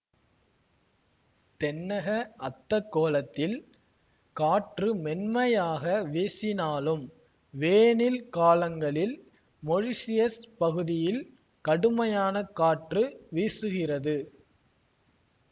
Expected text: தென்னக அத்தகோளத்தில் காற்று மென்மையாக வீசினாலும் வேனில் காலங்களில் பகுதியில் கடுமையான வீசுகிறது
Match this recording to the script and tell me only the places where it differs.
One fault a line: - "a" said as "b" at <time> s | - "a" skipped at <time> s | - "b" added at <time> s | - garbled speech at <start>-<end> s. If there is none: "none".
- "மொரீஷியஸ்" added at 9.6 s
- "காற்று" added at 12.6 s